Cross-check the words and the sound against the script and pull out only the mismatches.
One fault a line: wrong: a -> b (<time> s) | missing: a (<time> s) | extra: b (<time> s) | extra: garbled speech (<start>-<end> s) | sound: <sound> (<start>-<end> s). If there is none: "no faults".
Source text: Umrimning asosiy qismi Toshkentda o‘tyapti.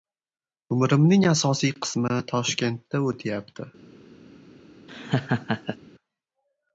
sound: laugh (4.9-5.8 s)